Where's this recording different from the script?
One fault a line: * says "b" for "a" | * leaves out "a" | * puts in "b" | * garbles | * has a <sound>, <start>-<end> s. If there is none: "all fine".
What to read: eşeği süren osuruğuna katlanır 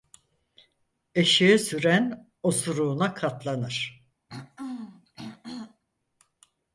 * has a throat clearing, 4.3-5.8 s